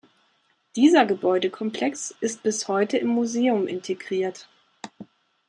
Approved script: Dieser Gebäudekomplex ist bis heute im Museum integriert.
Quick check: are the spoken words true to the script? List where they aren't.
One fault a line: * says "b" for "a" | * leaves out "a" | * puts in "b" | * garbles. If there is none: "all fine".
all fine